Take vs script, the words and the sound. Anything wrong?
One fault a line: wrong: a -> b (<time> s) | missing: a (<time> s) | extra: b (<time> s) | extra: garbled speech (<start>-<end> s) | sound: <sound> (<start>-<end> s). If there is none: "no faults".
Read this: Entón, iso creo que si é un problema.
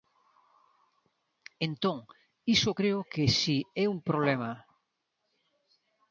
no faults